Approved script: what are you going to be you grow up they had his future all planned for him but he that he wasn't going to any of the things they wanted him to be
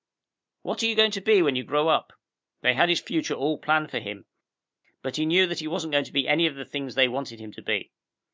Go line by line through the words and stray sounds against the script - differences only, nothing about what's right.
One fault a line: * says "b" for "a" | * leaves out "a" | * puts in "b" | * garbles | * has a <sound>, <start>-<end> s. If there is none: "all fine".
* puts in "when"
* puts in "knew"
* puts in "be"